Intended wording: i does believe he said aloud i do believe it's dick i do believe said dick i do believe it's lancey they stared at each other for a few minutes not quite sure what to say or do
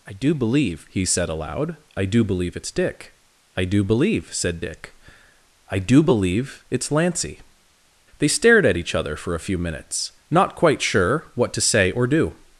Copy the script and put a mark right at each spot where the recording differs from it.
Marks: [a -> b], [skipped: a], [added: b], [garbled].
i [does -> do] believe he said aloud i do believe it's dick i do believe said dick i do believe it's lancey they stared at each other for a few minutes not quite sure what to say or do